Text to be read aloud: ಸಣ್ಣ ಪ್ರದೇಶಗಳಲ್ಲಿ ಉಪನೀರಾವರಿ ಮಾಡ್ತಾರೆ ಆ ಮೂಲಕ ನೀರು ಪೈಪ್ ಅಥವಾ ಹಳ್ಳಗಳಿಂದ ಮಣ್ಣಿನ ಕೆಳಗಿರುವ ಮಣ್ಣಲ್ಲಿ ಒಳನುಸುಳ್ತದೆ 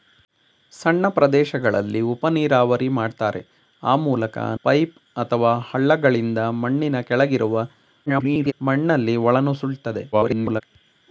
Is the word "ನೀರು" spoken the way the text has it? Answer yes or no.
no